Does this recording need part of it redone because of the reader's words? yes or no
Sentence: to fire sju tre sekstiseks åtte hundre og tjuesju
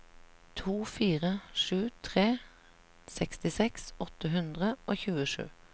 no